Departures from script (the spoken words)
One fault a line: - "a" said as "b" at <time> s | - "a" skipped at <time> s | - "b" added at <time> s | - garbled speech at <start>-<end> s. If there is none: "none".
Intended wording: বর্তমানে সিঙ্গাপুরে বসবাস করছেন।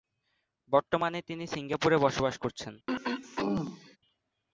- "তিনি" added at 1.2 s